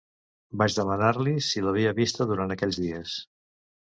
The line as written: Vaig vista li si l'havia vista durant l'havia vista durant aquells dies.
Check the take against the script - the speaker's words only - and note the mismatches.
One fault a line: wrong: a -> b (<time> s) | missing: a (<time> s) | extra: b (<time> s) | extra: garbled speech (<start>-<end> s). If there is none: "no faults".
wrong: vista -> demanar (0.8 s)
missing: l'havia vista durant (2.5 s)